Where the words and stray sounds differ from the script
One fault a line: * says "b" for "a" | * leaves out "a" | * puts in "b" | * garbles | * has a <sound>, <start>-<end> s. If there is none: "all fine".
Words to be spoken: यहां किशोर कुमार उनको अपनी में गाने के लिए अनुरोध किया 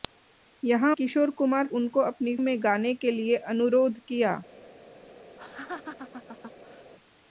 * has a laugh, 5.4-6.9 s